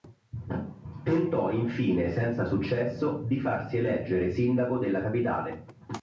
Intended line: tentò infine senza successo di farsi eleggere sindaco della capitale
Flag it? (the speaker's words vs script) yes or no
no